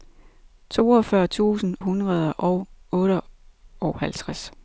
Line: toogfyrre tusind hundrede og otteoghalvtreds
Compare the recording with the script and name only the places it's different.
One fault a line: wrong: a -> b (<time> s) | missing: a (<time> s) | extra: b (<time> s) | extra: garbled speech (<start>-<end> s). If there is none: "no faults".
no faults